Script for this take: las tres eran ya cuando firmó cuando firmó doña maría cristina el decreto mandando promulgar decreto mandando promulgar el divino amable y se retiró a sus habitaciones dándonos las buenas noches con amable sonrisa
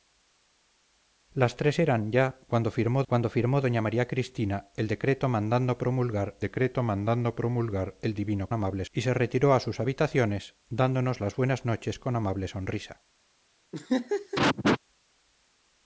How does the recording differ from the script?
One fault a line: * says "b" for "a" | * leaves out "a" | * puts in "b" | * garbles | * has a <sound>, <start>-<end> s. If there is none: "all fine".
* has a laugh, 13.7-14.8 s